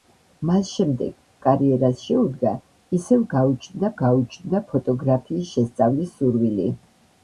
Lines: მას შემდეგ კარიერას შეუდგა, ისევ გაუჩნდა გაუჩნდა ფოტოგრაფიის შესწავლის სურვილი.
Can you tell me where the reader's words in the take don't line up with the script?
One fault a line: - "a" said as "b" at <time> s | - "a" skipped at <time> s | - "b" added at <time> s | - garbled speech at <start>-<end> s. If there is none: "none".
none